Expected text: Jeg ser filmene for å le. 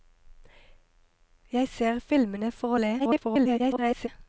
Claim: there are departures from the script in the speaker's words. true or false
true